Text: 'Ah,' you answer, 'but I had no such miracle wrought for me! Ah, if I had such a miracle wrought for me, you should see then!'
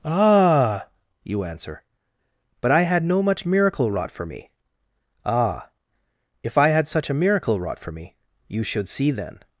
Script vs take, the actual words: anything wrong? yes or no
yes